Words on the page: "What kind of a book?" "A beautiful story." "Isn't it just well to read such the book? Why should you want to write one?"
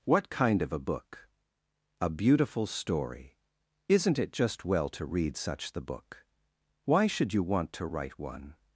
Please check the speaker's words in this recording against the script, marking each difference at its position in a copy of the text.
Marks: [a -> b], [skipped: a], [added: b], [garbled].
"What kind of a book?" "A beautiful story." "Isn't it just well to read such the book? Why should you want to write one?"